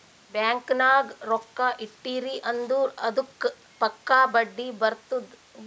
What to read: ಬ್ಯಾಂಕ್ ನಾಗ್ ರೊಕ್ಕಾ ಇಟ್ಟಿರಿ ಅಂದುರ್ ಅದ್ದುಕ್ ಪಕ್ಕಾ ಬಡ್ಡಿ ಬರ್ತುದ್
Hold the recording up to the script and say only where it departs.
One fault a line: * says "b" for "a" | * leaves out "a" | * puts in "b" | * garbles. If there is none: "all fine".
all fine